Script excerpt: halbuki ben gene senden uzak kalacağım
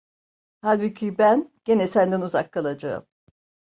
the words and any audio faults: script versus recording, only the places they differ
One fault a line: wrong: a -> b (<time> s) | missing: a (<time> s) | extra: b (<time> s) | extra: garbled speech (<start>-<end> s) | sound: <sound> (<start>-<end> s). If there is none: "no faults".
no faults